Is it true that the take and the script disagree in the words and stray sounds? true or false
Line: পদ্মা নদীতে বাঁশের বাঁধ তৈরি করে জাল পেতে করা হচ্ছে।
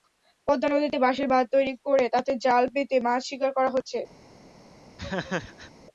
true